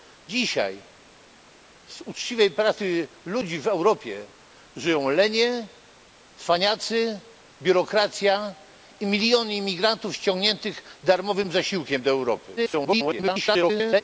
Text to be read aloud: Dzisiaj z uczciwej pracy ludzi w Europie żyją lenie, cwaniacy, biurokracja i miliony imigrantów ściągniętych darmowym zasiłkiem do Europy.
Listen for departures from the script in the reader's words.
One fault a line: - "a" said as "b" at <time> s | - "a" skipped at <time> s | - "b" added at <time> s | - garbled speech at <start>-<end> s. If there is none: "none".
- garbled speech at 12.6-14.0 s